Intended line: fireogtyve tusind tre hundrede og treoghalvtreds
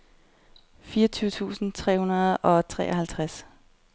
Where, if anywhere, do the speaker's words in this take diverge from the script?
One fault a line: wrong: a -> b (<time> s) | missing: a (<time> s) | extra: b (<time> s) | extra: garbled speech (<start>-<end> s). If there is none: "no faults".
no faults